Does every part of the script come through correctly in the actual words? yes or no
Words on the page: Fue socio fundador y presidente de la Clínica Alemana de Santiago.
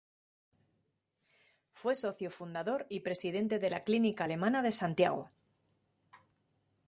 yes